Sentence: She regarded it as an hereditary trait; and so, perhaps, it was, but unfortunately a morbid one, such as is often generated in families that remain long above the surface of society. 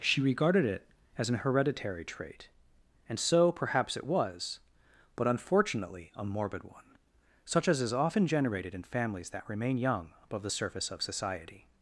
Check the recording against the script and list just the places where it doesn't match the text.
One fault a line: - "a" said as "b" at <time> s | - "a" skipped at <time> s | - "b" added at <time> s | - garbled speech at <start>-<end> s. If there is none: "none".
- "long" said as "young" at 9.8 s